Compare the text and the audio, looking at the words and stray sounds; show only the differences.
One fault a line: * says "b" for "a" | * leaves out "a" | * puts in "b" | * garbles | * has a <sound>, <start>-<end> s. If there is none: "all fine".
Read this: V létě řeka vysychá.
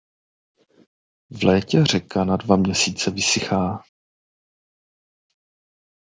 * puts in "na dva měsíce"